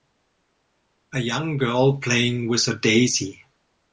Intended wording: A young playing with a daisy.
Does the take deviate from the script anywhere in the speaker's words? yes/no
yes